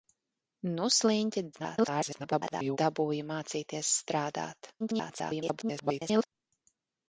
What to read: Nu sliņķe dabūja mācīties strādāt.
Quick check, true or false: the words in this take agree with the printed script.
false